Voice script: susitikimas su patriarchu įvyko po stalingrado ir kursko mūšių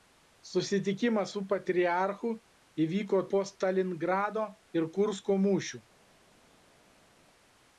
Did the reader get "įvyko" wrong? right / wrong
right